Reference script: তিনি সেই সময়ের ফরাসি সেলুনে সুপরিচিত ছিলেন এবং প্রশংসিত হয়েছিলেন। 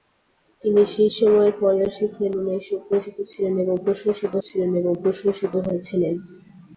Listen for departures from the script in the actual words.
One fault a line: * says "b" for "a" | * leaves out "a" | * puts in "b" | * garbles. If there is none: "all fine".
* puts in "ছিলেন এবং প্রশংসিত"